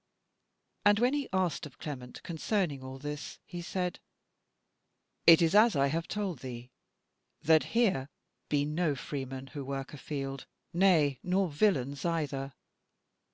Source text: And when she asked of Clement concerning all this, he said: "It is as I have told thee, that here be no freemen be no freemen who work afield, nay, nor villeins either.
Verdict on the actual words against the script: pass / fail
fail